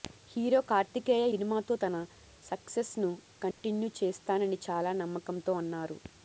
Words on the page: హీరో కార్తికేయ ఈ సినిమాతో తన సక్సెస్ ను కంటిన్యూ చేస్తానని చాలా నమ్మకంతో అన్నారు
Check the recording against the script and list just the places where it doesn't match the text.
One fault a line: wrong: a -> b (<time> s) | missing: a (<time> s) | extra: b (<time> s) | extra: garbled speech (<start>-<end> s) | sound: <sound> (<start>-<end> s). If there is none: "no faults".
missing: ఈ (1.2 s)
sound: dropout (3.5-3.6 s)